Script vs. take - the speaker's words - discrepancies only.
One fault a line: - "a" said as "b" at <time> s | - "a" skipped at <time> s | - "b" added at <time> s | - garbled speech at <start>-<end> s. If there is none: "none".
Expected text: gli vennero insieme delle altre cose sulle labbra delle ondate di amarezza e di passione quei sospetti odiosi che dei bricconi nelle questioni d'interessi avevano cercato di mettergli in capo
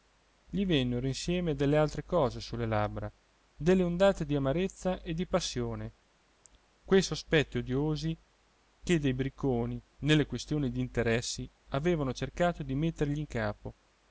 none